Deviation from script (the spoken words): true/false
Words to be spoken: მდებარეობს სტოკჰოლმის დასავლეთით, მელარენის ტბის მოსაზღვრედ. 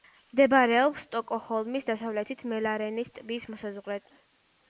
false